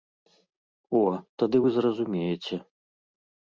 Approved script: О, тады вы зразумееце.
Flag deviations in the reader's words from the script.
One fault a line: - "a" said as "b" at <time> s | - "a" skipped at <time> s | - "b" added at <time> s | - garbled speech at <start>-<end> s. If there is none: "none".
none